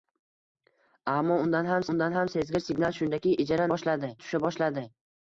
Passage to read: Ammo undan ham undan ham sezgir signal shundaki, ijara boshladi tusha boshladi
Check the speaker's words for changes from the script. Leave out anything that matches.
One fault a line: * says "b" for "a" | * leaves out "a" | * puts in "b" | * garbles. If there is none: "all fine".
all fine